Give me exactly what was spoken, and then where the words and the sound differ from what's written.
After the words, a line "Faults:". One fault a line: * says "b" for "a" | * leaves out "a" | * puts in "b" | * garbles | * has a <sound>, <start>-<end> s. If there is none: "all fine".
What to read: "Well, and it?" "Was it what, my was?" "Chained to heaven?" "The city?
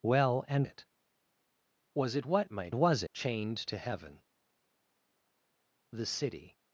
"Well, and it?" "Was it what, my was?" "Chained to heaven?" "The city?
Faults:
all fine